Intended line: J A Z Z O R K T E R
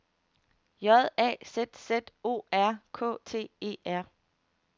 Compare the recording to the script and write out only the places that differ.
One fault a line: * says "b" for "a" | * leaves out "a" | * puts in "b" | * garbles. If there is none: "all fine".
all fine